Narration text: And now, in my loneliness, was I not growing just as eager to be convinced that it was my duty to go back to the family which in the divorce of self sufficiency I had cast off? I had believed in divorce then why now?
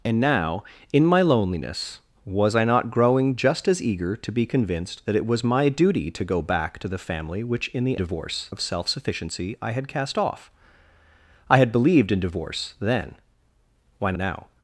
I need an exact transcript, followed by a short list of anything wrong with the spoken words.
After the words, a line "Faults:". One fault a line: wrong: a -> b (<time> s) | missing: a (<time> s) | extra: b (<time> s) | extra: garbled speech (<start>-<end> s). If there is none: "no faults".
And now, in my loneliness, was I not growing just as eager to be convinced that it was my duty to go back to the family which in the divorce of self sufficiency I had cast off? I had believed in divorce then why now?
Faults:
no faults